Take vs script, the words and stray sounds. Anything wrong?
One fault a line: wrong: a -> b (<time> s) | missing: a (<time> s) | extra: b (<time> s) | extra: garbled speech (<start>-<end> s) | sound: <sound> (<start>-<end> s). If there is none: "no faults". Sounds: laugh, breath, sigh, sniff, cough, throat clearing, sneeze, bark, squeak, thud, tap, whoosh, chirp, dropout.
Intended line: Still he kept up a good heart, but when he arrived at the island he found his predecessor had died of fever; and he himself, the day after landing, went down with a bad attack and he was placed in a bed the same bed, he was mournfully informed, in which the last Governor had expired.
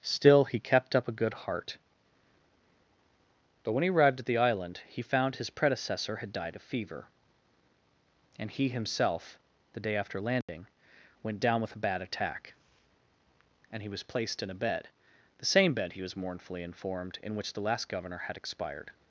sound: dropout (10.4-10.5 s)